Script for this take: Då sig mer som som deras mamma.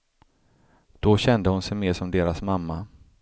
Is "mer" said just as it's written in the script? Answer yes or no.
yes